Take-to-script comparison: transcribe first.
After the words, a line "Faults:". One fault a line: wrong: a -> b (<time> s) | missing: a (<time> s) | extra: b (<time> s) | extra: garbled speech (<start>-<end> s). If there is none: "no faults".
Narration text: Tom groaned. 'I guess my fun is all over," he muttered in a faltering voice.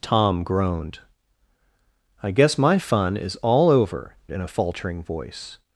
Tom groaned. 'I guess my fun is all over," in a faltering voice.
Faults:
missing: he muttered (4.2 s)